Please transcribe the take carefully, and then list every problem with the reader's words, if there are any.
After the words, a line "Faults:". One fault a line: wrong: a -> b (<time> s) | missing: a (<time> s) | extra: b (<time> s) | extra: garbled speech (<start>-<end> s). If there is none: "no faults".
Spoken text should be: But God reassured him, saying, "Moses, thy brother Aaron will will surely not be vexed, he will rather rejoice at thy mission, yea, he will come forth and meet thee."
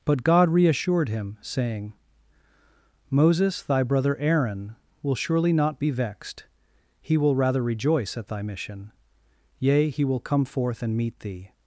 But God reassured him, saying, "Moses, thy brother Aaron will surely not be vexed, he will rather rejoice at thy mission, yea, he will come forth and meet thee."
Faults:
missing: will (5.2 s)